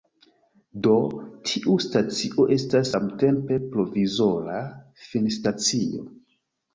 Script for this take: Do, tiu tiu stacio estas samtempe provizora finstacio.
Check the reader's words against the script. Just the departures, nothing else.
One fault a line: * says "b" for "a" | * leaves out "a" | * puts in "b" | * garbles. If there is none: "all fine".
* leaves out "tiu"